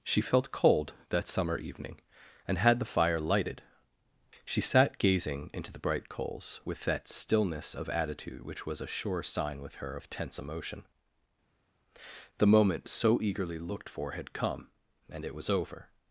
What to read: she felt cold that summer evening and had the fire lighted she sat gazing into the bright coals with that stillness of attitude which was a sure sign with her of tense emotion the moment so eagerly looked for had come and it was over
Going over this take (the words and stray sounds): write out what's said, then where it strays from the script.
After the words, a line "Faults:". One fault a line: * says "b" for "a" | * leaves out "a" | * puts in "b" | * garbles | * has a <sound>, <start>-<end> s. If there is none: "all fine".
she felt cold that summer evening and had the fire lighted she sat gazing into the bright coals with that stillness of attitude which was a sure sign with her of tense emotion the moment so eagerly looked for had come and it was over
Faults:
all fine